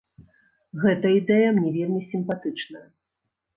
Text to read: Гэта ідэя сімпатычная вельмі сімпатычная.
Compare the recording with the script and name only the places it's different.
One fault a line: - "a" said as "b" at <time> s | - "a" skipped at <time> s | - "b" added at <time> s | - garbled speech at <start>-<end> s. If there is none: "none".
- "сімпатычная" said as "мне" at 1.6 s